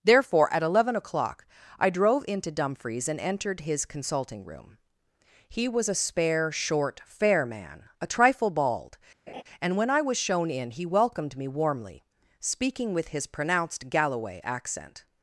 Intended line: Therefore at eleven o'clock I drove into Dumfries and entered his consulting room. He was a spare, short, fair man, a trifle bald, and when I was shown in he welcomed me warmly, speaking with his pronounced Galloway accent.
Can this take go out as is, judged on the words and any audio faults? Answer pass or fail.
fail